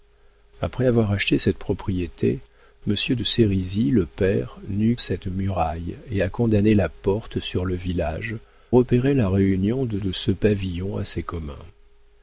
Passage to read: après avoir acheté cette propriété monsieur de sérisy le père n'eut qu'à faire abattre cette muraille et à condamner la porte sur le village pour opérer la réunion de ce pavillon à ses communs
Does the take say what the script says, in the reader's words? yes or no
no